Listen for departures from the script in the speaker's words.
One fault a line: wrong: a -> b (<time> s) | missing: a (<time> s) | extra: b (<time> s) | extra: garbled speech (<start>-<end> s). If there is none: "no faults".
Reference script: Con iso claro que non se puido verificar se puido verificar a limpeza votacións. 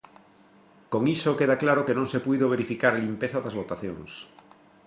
extra: queda (1.4 s)
missing: se puido verificar (2.9 s)
extra: das (3.4 s)